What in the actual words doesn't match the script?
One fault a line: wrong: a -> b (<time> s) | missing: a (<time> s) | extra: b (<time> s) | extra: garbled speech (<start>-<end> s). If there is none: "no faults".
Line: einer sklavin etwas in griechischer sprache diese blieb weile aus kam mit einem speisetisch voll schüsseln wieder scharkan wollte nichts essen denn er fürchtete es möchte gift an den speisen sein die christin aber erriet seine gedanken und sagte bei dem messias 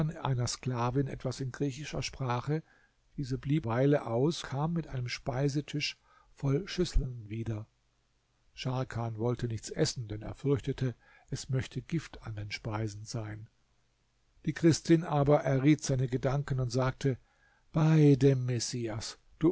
no faults